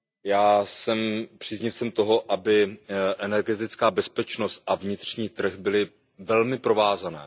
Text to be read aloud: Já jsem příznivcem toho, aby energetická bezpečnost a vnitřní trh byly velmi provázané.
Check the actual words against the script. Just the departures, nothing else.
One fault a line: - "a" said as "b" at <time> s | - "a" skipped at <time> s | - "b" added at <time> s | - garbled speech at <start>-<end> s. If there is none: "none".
none